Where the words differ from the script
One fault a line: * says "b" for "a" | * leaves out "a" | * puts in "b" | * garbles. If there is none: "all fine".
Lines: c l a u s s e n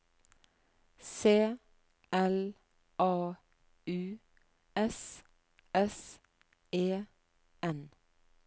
all fine